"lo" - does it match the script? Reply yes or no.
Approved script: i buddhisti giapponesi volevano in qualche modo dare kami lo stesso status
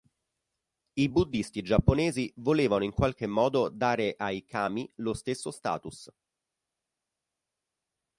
yes